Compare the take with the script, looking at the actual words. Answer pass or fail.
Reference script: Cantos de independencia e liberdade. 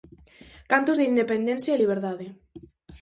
pass